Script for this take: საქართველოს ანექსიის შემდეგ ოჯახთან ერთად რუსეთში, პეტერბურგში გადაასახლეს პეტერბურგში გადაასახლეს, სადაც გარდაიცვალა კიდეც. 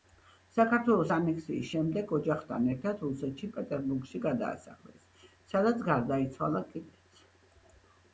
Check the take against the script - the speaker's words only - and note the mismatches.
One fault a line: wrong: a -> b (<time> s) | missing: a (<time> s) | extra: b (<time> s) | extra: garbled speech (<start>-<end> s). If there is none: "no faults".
missing: პეტერბურგში გადაასახლეს (5.1 s)